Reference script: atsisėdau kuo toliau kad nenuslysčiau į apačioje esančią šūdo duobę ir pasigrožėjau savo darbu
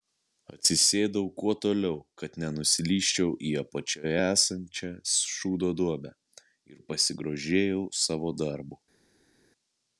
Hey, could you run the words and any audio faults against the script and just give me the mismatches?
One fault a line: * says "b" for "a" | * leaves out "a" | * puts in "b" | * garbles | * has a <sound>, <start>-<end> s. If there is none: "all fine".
all fine